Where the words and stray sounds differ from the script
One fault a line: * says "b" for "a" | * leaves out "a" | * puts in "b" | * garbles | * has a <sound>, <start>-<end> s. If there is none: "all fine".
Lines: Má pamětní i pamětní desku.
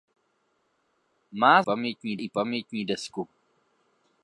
all fine